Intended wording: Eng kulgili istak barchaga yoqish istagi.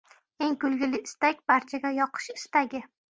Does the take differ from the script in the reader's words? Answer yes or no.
no